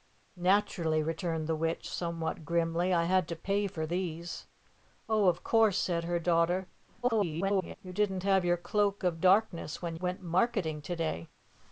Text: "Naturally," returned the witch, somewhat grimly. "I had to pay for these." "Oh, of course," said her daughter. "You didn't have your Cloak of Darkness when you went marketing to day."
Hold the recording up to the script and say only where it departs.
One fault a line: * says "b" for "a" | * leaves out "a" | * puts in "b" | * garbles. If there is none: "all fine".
* garbles
* leaves out "you"